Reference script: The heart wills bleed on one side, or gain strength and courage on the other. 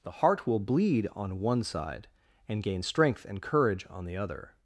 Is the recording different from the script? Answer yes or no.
yes